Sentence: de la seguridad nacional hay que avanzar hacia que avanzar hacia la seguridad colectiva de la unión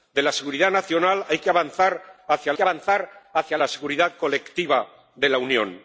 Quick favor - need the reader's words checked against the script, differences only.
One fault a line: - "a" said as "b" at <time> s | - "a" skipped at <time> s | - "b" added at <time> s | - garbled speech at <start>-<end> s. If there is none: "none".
none